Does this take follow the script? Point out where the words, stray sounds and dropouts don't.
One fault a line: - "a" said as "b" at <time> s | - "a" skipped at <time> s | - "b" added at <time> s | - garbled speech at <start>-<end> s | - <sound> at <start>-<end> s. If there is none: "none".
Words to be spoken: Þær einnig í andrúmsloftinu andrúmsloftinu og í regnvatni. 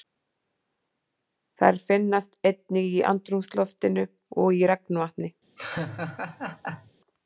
- "finnast" added at 1.9 s
- "andrúmsloftinu" skipped at 4.1 s
- laugh at 5.6-6.9 s